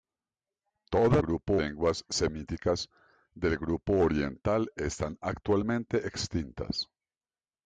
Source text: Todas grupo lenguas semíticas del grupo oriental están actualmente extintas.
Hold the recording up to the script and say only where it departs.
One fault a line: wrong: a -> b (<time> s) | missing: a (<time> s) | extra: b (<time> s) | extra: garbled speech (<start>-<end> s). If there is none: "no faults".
no faults